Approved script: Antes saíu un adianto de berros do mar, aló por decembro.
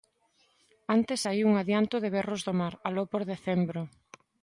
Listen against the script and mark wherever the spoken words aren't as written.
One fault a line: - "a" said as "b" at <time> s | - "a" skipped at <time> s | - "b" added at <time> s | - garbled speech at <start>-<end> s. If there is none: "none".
none